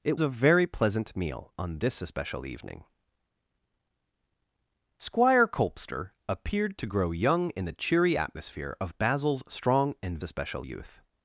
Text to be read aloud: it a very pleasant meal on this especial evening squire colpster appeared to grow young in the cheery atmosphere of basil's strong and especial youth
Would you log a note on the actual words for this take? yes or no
no